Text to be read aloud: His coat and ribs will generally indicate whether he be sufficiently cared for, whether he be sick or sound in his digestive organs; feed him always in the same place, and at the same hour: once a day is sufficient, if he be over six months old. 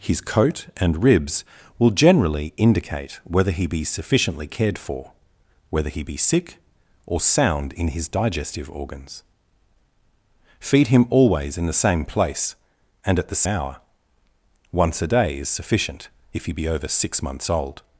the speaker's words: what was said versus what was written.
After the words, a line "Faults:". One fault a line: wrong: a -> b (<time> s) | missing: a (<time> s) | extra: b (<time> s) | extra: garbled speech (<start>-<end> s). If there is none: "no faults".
His coat and ribs will generally indicate whether he be sufficiently cared for, whether he be sick or sound in his digestive organs; feed him always in the same place, and at the hour: once a day is sufficient, if he be over six months old.
Faults:
missing: same (13.4 s)